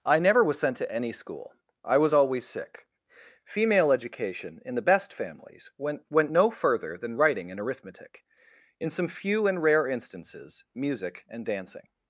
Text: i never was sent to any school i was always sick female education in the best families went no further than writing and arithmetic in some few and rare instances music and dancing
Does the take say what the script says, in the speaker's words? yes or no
no